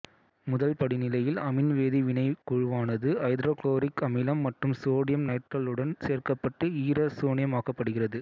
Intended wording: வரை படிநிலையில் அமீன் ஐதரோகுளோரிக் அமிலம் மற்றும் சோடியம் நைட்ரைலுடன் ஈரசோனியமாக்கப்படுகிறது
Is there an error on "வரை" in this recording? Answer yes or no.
yes